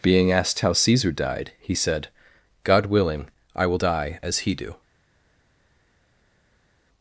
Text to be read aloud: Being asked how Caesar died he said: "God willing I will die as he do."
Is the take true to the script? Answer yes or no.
yes